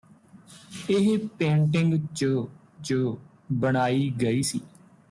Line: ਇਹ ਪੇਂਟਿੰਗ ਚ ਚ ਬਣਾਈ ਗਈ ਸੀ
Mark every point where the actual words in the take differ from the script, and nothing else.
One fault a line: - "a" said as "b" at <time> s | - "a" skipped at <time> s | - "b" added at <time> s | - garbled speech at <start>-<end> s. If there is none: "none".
none